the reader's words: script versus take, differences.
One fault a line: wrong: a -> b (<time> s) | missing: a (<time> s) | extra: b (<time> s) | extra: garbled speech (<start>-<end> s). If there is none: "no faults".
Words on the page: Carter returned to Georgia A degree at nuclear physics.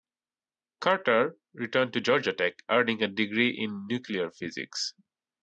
extra: Tech earning (2.3 s)
wrong: at -> in (3.5 s)